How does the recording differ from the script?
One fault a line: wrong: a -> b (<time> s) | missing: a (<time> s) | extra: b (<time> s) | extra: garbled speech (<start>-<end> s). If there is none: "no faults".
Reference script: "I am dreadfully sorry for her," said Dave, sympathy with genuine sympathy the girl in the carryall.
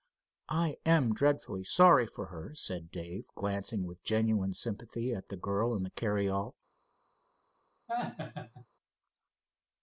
wrong: sympathy -> glancing (3.4 s)
extra: at (5.1 s)